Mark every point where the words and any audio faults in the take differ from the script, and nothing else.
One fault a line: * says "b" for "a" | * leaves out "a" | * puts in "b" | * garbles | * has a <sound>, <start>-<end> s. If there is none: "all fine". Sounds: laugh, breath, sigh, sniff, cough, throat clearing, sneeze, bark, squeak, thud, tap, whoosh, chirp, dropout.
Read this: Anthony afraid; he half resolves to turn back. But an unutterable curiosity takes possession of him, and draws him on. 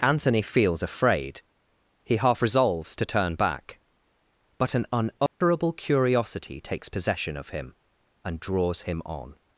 * puts in "feels"
* has a dropout, 5.3-5.4 s